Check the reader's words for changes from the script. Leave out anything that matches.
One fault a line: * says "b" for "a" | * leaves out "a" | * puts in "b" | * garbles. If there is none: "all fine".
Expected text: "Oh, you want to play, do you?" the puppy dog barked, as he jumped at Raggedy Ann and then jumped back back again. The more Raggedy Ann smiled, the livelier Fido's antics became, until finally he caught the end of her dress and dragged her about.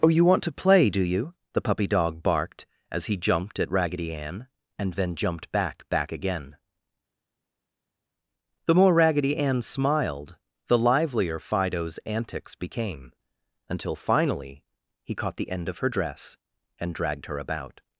all fine